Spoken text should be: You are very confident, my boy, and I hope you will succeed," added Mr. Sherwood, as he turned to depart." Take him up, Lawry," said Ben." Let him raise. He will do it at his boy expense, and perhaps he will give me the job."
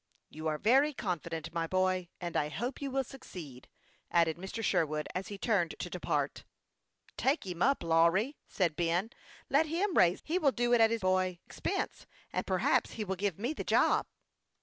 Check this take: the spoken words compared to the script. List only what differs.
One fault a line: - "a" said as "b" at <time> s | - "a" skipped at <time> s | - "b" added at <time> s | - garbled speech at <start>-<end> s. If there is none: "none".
none